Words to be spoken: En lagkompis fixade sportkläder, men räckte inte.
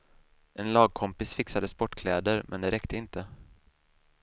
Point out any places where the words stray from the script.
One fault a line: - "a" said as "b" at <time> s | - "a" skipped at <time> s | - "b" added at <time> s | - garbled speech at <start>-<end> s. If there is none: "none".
- "det" added at 2.6 s